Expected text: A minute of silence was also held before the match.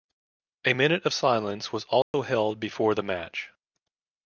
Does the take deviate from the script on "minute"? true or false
false